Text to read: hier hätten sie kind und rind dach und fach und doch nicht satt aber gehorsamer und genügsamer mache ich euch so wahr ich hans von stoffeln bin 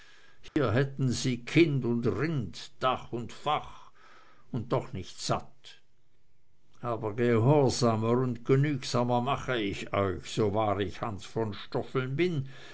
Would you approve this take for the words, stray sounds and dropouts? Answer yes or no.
no